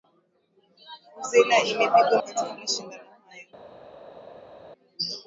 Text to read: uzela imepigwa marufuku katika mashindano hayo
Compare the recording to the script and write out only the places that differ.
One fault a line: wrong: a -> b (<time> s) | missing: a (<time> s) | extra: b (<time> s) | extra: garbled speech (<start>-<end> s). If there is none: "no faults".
missing: marufuku (2.2 s)